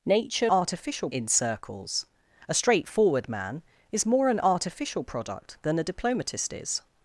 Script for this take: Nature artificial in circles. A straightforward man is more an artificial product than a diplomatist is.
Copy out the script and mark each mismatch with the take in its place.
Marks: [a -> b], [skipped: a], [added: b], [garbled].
Nature artificial in circles. A straightforward man is more an artificial product than a diplomatist is.